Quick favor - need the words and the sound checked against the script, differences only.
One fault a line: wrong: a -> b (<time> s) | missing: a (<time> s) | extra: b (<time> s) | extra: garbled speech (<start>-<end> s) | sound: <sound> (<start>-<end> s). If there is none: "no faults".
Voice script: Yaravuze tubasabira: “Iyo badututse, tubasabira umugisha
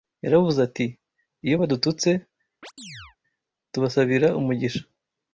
wrong: tubasabira -> ati (0.7 s)
sound: chirp (2.6-3.2 s)